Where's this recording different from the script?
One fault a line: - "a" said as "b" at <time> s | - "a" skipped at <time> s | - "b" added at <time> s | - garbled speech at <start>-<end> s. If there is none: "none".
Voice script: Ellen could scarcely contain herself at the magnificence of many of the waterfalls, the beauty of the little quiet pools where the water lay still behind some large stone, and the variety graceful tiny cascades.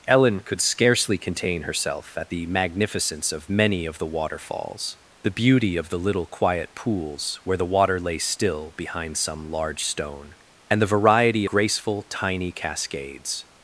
none